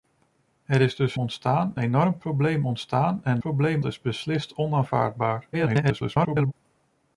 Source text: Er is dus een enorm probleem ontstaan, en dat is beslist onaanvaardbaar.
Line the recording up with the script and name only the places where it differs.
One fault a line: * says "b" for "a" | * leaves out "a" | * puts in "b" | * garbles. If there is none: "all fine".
* says "ontstaan" for "een"
* says "probleem" for "dat"
* garbles